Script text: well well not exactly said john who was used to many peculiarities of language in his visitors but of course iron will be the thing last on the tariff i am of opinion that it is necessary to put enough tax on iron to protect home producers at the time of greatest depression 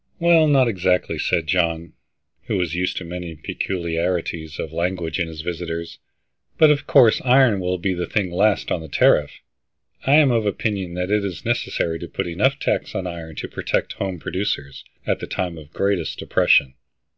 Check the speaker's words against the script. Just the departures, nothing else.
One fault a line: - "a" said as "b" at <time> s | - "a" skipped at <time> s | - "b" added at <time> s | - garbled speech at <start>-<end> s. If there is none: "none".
- "well" skipped at 0.5 s